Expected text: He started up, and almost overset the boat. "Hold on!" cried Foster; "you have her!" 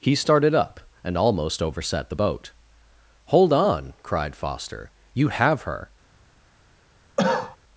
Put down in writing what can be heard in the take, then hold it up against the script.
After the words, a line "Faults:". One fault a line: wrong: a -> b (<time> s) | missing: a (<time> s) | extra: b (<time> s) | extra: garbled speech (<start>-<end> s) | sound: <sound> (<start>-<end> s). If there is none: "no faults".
He started up, and almost overset the boat. "Hold on!" cried Foster; "you have her!"
Faults:
sound: cough (7.2-7.6 s)